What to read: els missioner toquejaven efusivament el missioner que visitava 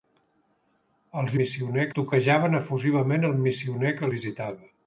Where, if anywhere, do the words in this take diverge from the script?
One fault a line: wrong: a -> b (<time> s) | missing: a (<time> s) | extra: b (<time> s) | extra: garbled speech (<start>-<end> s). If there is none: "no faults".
no faults